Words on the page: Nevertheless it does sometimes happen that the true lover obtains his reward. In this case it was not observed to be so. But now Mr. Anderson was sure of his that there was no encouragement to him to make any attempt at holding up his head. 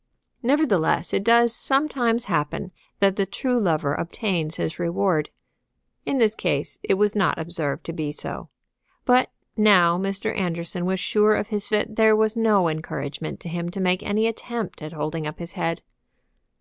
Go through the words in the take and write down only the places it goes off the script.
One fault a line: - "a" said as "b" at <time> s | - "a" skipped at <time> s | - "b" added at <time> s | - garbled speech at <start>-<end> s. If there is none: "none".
none